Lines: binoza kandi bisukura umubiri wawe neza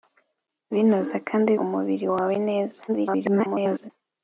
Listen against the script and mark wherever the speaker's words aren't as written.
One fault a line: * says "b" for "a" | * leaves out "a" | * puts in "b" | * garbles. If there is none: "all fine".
* leaves out "bisukura"
* garbles